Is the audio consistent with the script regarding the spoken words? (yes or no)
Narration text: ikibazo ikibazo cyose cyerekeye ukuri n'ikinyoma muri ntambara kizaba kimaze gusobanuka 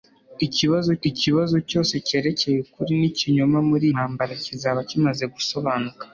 yes